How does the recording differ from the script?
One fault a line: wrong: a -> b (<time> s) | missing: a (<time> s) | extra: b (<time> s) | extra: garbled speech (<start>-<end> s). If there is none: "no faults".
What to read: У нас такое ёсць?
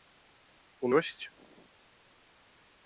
missing: нас такое (0.9 s)